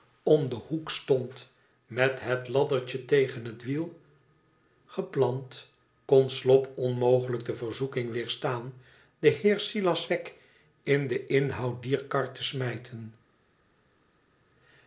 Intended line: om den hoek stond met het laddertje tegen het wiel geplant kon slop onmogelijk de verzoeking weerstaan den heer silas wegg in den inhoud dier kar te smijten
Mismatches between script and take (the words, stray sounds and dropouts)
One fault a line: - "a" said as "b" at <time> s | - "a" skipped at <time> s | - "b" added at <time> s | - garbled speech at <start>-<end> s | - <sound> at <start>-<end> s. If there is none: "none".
none